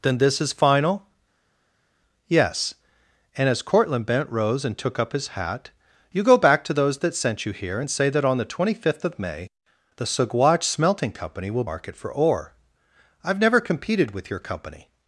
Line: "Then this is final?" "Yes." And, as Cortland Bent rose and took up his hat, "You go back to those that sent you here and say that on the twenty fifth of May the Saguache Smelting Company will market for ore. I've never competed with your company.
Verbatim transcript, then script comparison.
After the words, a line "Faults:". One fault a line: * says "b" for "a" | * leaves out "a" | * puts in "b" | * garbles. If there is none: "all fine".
"Then this is final?" "Yes." And, as Cortland Bent rose and took up his hat, "You go back to those that sent you here and say that on the twenty fifth of May the Saguache Smelting Company will market for ore. I've never competed with your company.
Faults:
all fine